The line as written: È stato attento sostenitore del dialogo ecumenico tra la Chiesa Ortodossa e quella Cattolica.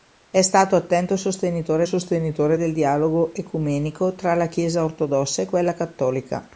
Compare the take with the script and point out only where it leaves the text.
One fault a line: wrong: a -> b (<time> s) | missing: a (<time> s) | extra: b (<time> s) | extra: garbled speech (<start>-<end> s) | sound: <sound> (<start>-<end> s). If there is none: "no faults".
extra: sostenitore (1.8 s)